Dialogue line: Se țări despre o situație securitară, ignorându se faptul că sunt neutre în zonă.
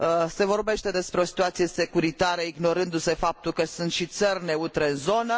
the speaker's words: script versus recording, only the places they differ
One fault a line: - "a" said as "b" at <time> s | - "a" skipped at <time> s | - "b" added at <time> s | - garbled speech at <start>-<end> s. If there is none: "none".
- "țări" said as "vorbește" at 0.5 s
- "și țări" added at 3.9 s